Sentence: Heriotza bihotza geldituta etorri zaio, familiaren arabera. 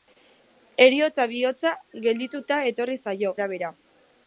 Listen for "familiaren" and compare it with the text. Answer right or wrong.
wrong